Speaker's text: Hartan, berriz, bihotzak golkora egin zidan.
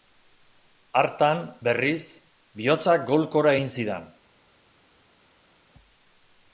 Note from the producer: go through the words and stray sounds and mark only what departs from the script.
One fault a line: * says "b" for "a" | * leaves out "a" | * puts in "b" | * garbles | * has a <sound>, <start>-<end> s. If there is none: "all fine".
all fine